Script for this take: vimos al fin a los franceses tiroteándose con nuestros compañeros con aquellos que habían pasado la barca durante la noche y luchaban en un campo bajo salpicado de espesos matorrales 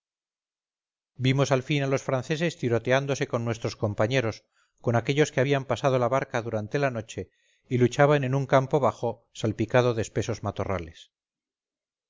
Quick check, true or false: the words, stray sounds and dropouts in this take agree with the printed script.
true